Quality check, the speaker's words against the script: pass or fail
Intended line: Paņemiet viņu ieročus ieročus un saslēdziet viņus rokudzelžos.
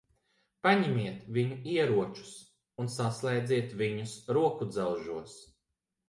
fail